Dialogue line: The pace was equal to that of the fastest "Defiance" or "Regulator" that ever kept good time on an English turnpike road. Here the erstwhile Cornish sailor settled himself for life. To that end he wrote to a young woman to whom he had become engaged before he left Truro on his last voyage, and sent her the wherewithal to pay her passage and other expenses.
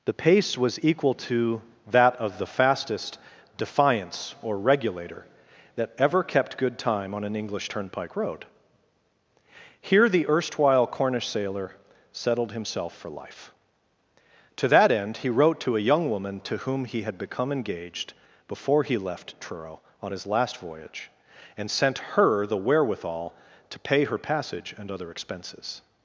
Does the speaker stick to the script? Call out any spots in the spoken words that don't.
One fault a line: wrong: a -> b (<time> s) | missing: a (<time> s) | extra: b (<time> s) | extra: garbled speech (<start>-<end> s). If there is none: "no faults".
no faults